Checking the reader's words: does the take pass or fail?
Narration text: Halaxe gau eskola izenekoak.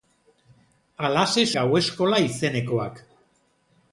pass